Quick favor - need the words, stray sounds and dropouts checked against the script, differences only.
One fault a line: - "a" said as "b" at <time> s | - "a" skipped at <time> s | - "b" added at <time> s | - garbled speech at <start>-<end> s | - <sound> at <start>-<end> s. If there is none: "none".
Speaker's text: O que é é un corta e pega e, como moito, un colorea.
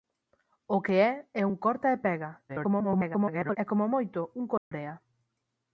- garbled speech at 2.5-3.6 s
- dropout at 4.6-4.7 s